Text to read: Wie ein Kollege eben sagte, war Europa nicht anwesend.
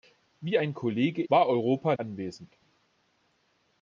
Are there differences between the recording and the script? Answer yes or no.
yes